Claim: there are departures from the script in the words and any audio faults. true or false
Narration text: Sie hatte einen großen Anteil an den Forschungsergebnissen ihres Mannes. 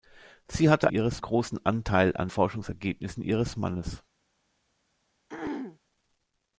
true